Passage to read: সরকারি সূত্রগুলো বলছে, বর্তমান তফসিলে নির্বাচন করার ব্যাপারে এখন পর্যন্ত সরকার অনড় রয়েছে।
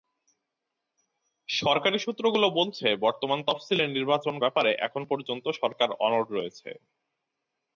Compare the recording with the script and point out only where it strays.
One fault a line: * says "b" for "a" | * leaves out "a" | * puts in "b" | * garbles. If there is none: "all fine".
* leaves out "করার"